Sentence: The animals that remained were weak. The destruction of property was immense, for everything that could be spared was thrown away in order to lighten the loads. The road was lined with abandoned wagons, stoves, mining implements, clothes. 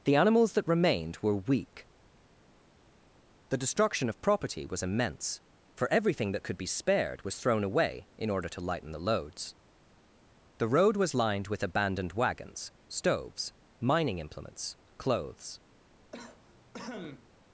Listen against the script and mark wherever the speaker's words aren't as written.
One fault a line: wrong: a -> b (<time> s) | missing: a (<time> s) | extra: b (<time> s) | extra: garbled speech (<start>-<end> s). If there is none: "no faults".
no faults